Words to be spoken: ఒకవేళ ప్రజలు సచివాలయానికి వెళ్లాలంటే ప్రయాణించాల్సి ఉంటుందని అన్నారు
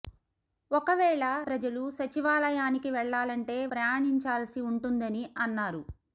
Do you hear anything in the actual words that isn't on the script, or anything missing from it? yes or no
no